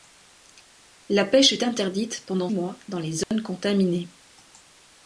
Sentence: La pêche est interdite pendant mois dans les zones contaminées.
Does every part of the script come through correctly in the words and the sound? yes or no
no